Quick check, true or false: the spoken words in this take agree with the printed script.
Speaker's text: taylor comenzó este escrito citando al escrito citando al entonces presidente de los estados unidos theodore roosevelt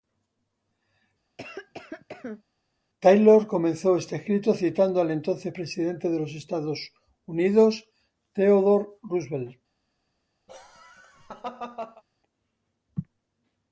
false